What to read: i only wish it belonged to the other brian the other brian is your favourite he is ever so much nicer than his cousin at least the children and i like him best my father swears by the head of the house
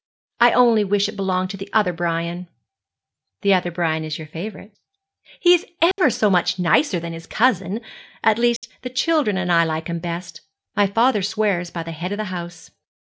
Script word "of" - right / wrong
right